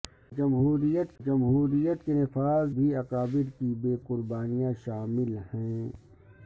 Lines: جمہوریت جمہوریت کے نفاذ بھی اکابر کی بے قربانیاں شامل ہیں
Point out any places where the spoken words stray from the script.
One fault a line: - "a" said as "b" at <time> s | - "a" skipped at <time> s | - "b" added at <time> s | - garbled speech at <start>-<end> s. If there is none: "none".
none